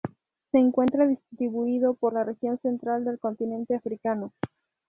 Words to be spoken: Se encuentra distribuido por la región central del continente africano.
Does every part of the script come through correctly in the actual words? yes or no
yes